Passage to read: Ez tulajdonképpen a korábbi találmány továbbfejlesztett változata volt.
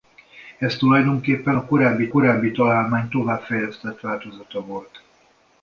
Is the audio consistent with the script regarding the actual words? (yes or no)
no